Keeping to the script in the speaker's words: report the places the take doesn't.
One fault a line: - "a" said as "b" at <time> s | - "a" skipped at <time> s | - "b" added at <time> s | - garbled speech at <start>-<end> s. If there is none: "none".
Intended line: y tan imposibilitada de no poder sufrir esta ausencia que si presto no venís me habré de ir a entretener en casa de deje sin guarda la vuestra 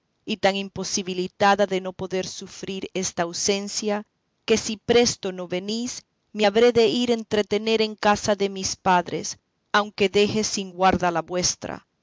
- "mis padres aunque" added at 8.5 s